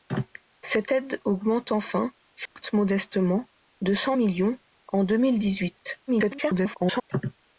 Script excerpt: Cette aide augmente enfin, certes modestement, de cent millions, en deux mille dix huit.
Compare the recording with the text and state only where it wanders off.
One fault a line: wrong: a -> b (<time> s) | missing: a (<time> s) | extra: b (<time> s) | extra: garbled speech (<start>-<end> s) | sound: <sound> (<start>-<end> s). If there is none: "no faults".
sound: dropout (2.5-2.6 s)
extra: garbled speech (6.1-7.1 s)